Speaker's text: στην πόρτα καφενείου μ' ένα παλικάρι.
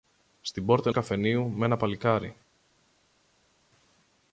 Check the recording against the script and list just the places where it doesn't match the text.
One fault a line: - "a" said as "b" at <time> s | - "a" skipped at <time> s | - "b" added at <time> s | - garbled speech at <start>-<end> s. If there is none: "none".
none